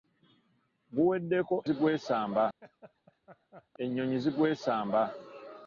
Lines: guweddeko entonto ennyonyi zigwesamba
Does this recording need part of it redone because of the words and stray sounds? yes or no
yes